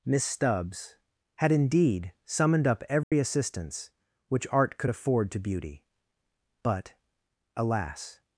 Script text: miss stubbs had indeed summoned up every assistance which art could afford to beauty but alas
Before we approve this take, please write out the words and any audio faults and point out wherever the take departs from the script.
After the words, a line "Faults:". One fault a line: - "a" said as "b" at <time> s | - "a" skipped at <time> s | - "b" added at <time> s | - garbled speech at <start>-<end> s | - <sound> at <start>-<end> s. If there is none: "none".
miss stubbs had indeed summoned up every assistance which art could afford to beauty but alas
Faults:
- dropout at 3.0-3.1 s